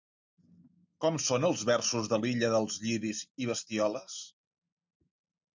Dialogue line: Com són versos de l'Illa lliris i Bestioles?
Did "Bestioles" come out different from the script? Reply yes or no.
no